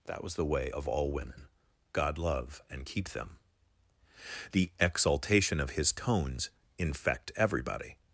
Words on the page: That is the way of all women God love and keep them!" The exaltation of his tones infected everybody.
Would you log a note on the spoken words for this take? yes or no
yes